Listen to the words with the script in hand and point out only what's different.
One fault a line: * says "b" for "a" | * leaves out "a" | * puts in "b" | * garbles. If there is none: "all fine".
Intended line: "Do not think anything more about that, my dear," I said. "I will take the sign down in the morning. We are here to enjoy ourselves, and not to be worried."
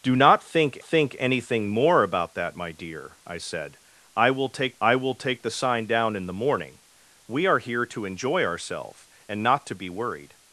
* puts in "think"
* puts in "I will take"